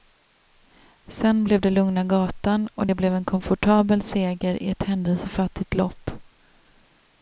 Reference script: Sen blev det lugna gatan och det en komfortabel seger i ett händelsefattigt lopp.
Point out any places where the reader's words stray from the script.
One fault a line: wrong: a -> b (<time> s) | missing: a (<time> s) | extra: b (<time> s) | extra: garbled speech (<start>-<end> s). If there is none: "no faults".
extra: blev (2.9 s)